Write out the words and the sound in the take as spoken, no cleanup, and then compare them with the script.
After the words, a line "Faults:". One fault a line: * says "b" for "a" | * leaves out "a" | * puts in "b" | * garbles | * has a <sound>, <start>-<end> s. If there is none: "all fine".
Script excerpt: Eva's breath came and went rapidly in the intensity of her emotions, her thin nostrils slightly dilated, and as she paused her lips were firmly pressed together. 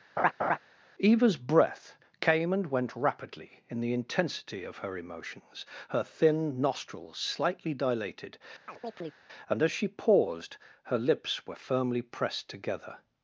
Eva's breath came and went rapidly in the intensity of her emotions, her thin nostrils slightly dilated, and as she paused her lips were firmly pressed together.
Faults:
* has a laugh, 0.2-0.6 s
* has a chirp, 8.7-9.2 s